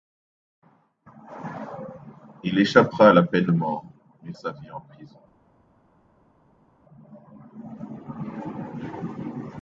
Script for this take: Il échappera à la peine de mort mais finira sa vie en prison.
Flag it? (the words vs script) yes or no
yes